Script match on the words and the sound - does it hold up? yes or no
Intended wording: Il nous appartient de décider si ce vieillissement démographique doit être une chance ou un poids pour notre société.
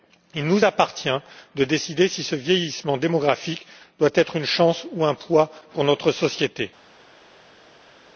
yes